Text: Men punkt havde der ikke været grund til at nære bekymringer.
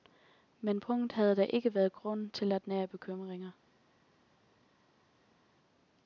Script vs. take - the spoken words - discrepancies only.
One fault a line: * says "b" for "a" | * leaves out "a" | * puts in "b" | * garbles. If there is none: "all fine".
all fine